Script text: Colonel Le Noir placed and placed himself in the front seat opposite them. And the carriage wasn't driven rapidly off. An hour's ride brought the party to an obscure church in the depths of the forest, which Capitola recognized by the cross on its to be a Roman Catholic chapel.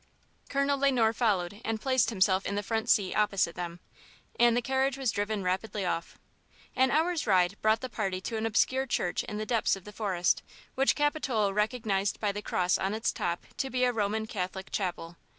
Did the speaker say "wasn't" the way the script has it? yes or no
no